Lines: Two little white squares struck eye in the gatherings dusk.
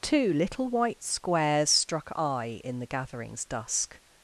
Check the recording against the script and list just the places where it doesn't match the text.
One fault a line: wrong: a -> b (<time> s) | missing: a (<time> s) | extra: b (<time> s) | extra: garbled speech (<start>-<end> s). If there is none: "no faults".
no faults